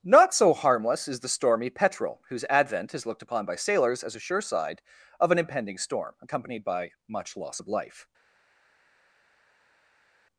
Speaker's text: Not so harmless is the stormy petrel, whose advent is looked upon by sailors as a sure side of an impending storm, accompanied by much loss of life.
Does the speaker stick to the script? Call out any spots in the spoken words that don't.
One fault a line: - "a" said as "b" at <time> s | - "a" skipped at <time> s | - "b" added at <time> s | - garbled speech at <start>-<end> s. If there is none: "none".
none